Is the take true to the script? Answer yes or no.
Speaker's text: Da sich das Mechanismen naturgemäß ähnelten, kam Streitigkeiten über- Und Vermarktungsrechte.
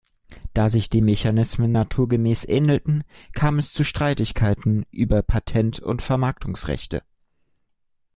no